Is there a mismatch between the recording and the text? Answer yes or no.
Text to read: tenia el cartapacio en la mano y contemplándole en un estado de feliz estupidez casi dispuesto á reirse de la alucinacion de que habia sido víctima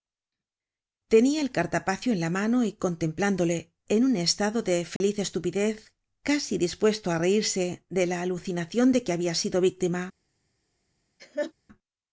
no